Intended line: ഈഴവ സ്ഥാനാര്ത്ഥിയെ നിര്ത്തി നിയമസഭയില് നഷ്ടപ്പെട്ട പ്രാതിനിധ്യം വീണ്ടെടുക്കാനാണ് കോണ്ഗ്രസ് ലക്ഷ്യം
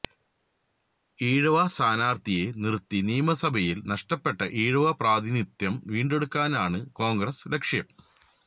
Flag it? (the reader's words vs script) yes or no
yes